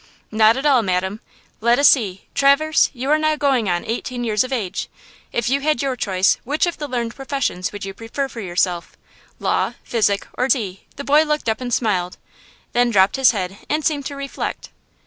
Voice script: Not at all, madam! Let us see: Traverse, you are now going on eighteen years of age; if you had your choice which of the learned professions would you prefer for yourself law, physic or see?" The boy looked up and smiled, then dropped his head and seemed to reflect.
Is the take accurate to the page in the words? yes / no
yes